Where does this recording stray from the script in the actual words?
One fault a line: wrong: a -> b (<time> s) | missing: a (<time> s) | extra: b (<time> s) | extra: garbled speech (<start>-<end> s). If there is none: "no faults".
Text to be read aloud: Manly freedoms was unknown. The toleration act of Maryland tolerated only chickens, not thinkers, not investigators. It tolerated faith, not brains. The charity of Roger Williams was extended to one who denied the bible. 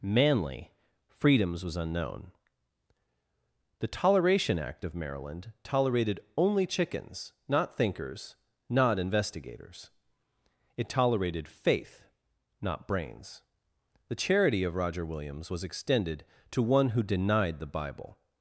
no faults